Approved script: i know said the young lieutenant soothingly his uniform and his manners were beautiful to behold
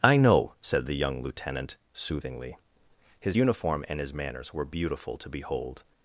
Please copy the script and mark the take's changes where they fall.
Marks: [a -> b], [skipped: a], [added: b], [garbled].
i know said the young lieutenant soothingly his uniform and his manners were beautiful to behold